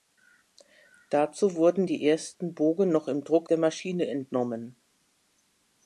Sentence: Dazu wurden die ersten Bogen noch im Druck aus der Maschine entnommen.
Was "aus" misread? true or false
true